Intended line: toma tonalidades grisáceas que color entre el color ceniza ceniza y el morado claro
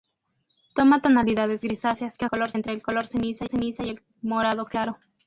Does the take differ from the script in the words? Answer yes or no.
no